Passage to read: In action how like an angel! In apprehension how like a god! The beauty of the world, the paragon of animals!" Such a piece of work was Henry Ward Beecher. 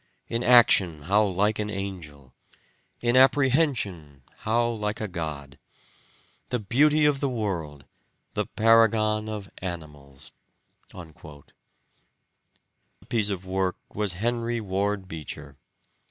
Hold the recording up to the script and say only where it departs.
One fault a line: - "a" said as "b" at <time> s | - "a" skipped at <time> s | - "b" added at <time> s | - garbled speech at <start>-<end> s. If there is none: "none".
- "Such" skipped at 10.3 s